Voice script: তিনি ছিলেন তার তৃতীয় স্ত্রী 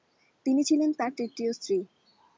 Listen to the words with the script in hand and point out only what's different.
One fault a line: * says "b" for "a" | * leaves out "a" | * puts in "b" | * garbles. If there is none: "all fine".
all fine